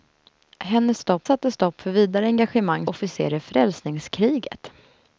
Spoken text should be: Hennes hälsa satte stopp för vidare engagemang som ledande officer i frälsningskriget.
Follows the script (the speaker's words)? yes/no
no